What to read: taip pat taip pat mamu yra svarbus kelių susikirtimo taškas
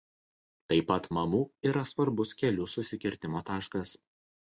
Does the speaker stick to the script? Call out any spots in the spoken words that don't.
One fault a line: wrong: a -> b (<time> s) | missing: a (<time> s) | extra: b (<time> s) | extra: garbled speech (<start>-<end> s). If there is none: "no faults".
missing: taip pat (1.1 s)